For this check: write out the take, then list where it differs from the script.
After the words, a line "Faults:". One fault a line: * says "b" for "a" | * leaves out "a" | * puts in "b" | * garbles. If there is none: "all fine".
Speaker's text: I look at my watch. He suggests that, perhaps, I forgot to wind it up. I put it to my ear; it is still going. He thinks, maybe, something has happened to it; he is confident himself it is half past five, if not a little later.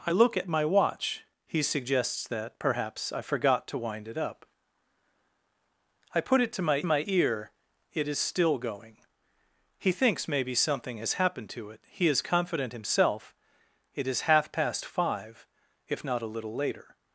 I look at my watch. He suggests that, perhaps, I forgot to wind it up. I put it to my my ear; it is still going. He thinks, maybe, something has happened to it; he is confident himself it is half past five, if not a little later.
Faults:
* puts in "my"